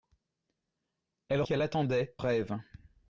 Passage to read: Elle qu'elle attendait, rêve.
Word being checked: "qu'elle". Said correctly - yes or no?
yes